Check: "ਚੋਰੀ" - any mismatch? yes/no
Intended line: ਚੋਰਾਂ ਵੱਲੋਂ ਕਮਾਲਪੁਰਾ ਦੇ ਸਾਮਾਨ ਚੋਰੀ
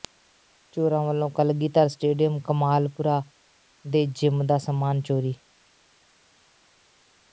no